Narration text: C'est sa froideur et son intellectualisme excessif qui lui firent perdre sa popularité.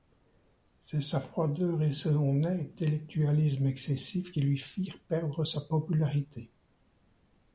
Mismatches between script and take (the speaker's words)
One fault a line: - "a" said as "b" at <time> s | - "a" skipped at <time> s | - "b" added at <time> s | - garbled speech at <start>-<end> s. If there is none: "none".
none